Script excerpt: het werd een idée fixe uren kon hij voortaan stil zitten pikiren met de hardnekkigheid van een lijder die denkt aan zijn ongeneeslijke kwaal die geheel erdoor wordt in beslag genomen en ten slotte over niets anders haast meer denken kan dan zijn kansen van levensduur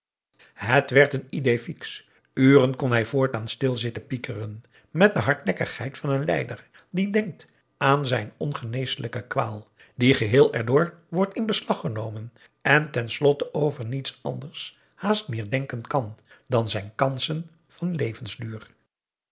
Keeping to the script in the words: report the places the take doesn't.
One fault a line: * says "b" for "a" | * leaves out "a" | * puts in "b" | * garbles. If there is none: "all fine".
all fine